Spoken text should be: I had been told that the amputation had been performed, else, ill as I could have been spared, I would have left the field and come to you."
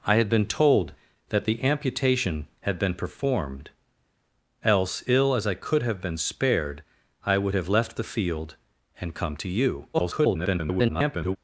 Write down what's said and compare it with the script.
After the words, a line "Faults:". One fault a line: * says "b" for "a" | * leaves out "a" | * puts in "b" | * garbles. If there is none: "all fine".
I had been told that the amputation had been performed, else, ill as I could have been spared, I would have left the field and come to you." [garbled]
Faults:
* garbles